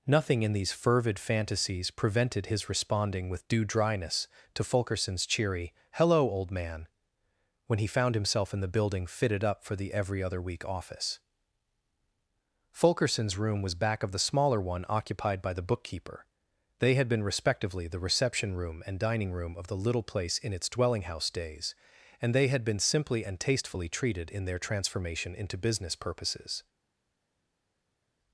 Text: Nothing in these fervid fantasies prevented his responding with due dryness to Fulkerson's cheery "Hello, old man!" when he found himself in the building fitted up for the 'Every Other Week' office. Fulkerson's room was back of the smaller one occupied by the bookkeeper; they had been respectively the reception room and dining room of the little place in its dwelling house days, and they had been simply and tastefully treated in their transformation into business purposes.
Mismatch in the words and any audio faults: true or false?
false